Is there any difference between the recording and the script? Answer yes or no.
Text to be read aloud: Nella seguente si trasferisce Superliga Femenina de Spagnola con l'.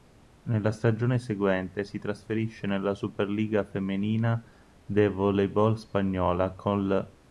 yes